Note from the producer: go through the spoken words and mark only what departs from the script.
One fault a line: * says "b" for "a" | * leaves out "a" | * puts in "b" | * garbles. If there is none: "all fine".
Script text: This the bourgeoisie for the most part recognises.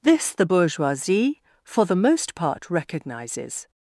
all fine